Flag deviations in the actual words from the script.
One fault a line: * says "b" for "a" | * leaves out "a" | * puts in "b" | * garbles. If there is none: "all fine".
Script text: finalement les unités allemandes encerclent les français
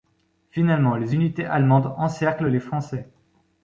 all fine